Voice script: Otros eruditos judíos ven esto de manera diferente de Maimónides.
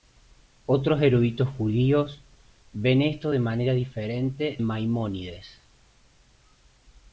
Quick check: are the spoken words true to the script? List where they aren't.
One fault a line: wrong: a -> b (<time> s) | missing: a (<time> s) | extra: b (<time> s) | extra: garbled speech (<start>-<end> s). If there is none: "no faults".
missing: de (4.6 s)